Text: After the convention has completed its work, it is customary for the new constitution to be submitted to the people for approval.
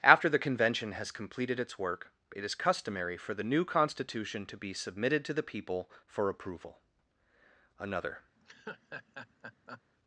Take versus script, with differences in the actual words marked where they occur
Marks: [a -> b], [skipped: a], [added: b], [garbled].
After the convention has completed its work, it is customary for the new constitution to be submitted to the people for approval. [added: Another]